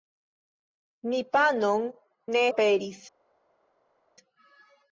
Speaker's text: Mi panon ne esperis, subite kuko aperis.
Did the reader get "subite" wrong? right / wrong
wrong